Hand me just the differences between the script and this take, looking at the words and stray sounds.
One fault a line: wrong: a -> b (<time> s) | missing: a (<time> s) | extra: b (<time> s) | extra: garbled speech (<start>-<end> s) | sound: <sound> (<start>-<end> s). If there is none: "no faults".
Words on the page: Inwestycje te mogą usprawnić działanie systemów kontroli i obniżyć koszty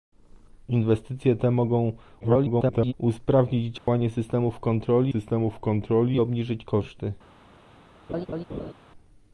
extra: garbled speech (2.2-2.9 s)
sound: dropout (3.8-3.9 s)
extra: systemów kontroli (5.1 s)
sound: laugh (8.1-8.7 s)